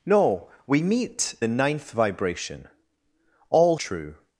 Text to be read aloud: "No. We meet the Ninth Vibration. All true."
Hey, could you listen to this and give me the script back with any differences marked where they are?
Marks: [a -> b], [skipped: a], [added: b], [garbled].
"No. We meet the Ninth Vibration. All true."